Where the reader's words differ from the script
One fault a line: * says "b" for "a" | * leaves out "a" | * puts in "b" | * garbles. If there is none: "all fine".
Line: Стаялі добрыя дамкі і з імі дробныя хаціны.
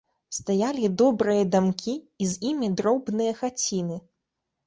all fine